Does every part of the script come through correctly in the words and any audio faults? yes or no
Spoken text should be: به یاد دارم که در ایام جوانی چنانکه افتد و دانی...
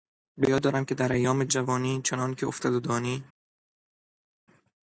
yes